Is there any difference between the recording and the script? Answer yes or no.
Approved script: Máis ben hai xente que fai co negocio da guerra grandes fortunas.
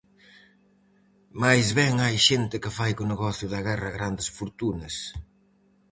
no